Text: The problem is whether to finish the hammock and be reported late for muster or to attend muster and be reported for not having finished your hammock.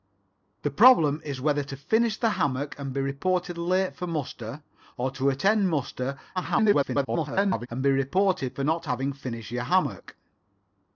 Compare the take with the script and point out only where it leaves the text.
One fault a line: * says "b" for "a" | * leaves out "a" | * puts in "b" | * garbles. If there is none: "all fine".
* garbles